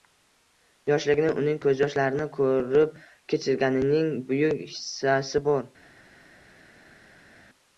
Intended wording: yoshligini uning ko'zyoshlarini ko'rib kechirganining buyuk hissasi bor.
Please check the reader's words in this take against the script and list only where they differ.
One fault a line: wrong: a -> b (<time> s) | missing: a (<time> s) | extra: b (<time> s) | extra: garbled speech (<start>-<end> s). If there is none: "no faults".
no faults